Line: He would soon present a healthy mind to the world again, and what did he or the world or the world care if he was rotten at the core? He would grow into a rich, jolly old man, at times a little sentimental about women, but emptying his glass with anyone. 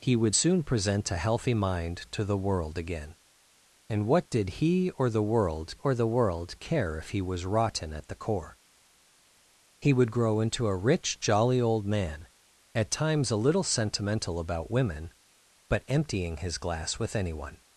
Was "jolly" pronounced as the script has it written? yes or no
yes